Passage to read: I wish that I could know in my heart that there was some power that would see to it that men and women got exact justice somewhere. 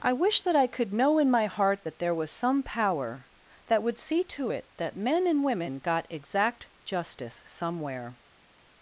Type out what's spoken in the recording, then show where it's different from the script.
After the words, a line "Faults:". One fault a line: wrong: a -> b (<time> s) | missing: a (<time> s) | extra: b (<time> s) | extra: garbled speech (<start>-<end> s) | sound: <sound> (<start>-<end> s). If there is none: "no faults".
I wish that I could know in my heart that there was some power that would see to it that men and women got exact justice somewhere.
Faults:
no faults